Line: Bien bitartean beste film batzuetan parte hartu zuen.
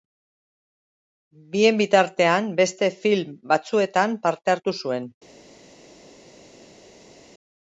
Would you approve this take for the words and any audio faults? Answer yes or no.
yes